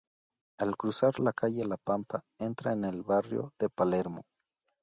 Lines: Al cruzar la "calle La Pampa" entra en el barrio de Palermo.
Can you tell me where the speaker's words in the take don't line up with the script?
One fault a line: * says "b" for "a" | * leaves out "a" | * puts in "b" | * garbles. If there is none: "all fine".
all fine